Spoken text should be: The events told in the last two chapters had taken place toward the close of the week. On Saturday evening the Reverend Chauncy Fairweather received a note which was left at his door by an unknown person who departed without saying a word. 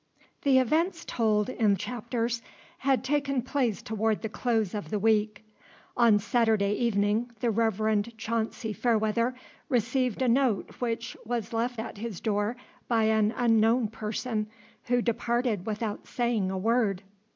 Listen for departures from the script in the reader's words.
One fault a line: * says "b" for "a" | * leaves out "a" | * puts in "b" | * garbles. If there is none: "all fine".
* leaves out "the last two"